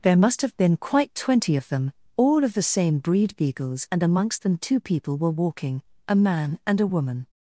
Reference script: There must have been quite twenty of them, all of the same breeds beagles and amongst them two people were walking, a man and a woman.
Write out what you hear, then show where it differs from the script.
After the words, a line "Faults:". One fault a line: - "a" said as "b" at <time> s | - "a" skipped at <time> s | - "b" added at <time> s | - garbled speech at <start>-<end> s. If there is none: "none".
There must have been quite twenty of them, all of the same breed beagles and amongst them two people were walking, a man and a woman.
Faults:
- "breeds" said as "breed" at 3.0 s